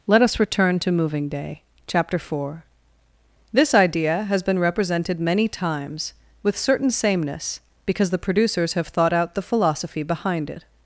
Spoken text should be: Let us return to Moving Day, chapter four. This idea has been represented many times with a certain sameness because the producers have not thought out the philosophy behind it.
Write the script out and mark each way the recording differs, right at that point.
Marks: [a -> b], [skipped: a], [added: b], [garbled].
Let us return to Moving Day, chapter four. This idea has been represented many times with [skipped: a] certain sameness because the producers have [skipped: not] thought out the philosophy behind it.